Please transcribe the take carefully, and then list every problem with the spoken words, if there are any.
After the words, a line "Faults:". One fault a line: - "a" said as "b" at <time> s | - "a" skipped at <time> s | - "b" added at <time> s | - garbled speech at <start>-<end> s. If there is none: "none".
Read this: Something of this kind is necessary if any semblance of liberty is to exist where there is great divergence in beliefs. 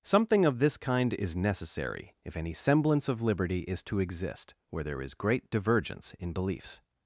Something of this kind is necessary if any semblance of liberty is to exist where there is great divergence in beliefs.
Faults:
none